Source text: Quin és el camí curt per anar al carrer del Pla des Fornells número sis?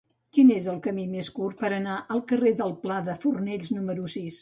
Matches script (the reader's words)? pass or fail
fail